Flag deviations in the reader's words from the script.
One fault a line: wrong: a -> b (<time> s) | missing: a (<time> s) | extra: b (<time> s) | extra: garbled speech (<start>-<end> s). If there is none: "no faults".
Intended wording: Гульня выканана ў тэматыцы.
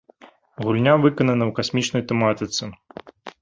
extra: касмічнай (1.6 s)